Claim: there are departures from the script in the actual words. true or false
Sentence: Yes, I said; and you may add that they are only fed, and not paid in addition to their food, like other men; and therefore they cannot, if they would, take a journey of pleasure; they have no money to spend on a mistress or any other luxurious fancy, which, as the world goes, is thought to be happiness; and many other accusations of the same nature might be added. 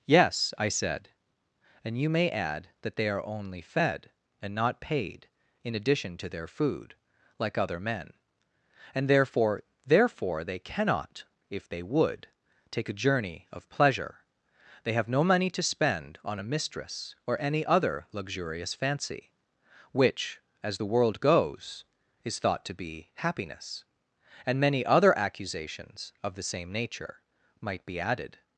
true